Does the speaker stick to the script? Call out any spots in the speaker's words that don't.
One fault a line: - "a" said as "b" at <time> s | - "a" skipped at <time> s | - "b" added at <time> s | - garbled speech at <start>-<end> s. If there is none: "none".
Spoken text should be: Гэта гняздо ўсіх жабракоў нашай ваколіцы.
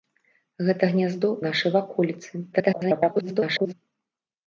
- "ўсіх жабракоў" skipped at 1.3 s
- garbled speech at 2.5-3.7 s